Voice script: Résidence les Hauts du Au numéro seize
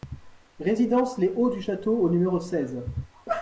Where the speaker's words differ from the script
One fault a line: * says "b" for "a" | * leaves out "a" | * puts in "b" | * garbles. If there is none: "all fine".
* puts in "Château"